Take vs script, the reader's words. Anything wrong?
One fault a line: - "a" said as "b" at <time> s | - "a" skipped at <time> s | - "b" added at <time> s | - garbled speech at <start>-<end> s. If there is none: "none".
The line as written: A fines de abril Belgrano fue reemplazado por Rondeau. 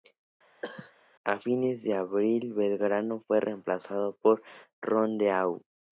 none